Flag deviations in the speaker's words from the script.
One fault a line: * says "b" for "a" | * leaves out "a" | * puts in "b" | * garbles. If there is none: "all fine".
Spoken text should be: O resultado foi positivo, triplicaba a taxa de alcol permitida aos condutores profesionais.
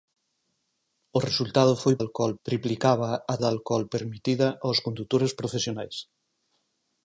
* says "alcol" for "positivo"
* leaves out "taxa"